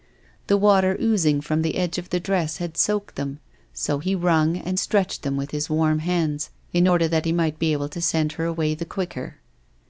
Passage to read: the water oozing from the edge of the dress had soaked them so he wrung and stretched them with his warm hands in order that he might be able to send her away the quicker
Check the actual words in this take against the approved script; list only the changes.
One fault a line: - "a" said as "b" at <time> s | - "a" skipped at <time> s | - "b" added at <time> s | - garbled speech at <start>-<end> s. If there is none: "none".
none